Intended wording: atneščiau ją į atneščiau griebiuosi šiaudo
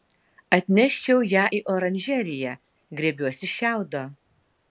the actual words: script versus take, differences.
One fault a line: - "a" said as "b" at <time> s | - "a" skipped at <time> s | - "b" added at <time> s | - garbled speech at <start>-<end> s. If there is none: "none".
- "atneščiau" said as "oranžeriją" at 1.7 s